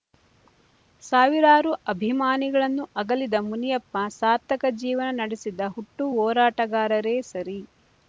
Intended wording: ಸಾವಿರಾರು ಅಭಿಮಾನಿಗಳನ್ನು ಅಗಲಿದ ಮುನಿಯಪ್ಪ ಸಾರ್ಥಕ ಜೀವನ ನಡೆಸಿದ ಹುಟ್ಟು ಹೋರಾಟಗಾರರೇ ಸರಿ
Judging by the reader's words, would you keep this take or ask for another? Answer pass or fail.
pass